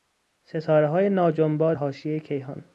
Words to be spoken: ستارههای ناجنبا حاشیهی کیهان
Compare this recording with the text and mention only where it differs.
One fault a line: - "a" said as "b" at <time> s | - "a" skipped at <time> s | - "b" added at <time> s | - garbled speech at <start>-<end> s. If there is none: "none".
none